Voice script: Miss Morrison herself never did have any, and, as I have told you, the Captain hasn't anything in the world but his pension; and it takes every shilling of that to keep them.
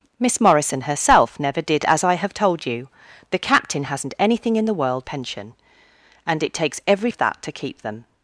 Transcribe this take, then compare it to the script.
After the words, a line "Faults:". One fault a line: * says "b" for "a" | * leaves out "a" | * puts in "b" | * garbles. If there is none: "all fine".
Miss Morrison herself never did as I have told you, the Captain hasn't anything in the world pension; and it takes every of that to keep them.
Faults:
* leaves out "have any and"
* leaves out "but his"
* leaves out "shilling"